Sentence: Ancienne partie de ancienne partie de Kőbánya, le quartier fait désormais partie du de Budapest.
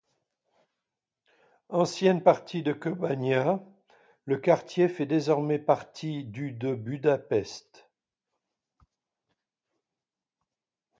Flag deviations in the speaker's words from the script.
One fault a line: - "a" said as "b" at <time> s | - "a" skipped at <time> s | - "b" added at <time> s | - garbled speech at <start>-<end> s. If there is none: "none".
- "ancienne partie de" skipped at 2.7 s